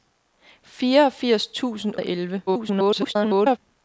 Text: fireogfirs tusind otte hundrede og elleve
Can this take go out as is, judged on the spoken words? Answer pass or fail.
fail